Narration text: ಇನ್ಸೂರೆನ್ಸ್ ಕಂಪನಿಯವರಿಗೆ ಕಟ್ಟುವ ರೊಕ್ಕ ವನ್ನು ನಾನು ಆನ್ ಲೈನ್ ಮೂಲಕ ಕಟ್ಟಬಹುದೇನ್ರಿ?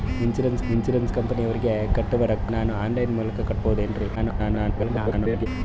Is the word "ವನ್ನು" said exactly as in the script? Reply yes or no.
no